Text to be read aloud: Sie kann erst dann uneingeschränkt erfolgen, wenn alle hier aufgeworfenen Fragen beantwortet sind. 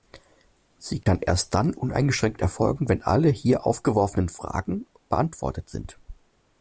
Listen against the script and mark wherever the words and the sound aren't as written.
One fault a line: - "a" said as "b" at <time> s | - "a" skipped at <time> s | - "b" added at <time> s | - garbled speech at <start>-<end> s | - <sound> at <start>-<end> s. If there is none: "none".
- dropout at 1.0-1.1 s